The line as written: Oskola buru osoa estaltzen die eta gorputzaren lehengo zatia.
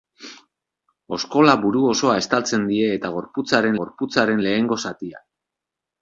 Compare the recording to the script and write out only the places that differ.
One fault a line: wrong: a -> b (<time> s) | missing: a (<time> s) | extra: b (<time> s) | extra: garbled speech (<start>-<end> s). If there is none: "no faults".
extra: gorputzaren (3.8 s)